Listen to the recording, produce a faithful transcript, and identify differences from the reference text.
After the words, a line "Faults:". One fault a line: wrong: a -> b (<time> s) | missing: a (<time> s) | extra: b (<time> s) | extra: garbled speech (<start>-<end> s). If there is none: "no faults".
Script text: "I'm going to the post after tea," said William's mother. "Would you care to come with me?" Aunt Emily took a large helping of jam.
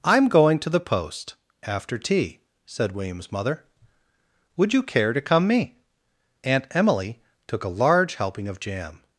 "I'm going to the post after tea," said William's mother. "Would you care to come me?" Aunt Emily took a large helping of jam.
Faults:
missing: with (5.5 s)